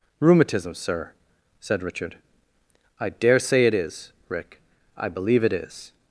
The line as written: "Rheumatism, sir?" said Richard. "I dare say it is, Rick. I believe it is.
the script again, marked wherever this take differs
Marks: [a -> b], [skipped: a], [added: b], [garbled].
"Rheumatism, sir?" said Richard. "I dare say it is, Rick. I believe it is.